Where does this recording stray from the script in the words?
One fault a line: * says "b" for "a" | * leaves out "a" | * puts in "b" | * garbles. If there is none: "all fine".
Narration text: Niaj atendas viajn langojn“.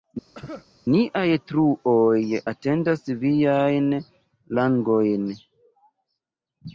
* puts in "truoj"